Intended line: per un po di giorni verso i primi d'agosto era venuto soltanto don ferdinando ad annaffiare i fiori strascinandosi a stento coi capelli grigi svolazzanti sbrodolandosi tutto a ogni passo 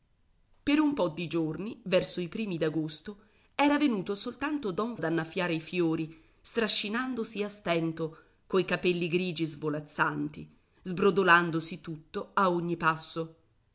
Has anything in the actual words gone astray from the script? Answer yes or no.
yes